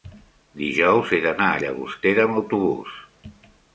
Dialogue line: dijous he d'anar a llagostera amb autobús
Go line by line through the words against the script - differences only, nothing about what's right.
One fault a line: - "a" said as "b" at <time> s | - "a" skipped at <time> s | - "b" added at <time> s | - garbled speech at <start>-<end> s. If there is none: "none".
none